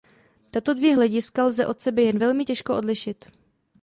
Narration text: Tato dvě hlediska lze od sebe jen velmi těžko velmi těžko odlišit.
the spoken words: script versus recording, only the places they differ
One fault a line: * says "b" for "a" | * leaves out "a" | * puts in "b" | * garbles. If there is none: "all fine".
* leaves out "velmi těžko"